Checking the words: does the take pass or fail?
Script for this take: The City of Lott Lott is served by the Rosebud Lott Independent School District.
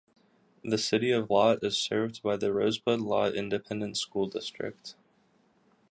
fail